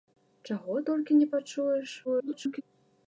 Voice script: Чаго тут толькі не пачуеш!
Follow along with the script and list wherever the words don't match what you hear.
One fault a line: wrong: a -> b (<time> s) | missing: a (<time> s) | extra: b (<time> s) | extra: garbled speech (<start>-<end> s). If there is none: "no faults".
missing: тут (0.8 s)
extra: garbled speech (2.0-2.6 s)